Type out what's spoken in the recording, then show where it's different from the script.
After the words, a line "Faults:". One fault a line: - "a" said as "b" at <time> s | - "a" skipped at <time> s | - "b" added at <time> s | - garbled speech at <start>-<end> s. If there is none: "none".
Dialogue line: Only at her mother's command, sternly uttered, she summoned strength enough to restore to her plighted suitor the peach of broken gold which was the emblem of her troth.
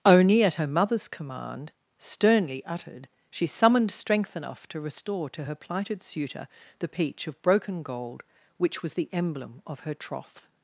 Only at her mother's command, sternly uttered, she summoned strength enough to restore to her plighted suitor the peach of broken gold which was the emblem of her troth.
Faults:
none